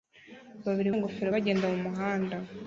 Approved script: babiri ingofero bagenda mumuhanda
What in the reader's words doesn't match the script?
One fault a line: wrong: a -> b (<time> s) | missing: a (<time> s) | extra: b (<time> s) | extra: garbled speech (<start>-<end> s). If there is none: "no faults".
no faults